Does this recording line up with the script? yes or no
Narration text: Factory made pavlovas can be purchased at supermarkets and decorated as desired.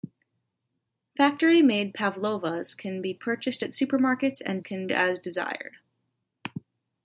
no